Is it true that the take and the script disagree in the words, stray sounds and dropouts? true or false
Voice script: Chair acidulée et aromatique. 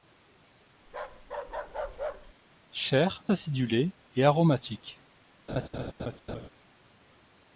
true